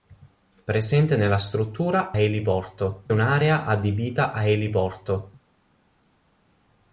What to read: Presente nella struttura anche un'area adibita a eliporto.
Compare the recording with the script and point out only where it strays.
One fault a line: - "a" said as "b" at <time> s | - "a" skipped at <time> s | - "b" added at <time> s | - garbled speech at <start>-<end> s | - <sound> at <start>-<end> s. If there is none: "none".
- "anche" said as "eliporto" at 2.2 s